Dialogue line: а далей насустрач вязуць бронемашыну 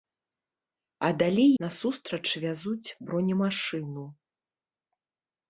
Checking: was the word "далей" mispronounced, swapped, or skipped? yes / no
no